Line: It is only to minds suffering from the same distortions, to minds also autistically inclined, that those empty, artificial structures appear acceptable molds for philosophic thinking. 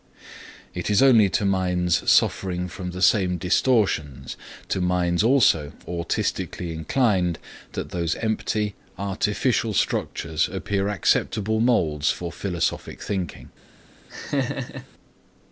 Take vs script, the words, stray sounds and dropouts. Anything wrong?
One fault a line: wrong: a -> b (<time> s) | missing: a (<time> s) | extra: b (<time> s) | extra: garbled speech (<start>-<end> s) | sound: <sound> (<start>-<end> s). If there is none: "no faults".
sound: laugh (14.1-14.9 s)